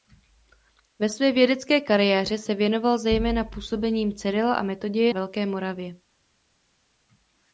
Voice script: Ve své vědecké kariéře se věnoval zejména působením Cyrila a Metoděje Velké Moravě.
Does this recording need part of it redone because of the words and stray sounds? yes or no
no